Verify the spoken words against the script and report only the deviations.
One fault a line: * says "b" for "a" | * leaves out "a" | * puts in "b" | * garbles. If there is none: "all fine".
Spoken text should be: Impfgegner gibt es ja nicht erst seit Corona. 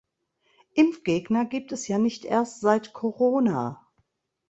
all fine